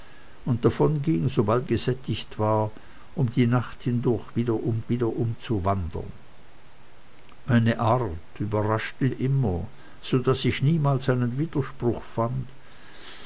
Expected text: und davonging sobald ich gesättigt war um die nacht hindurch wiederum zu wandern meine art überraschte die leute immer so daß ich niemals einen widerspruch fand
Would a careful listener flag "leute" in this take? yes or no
yes